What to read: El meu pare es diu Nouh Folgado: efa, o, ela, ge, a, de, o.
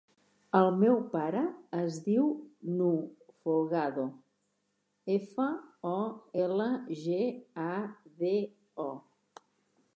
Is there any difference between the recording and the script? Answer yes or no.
no